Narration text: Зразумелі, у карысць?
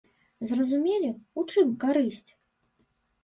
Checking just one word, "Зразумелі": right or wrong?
right